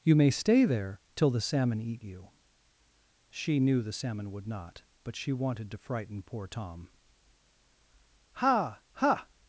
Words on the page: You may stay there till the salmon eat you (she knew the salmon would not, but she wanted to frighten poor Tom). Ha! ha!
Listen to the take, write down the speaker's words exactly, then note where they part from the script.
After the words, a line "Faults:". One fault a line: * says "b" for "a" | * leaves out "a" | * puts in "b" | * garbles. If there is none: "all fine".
You may stay there till the salmon eat you (she knew the salmon would not, but she wanted to frighten poor Tom). Ha! ha!
Faults:
all fine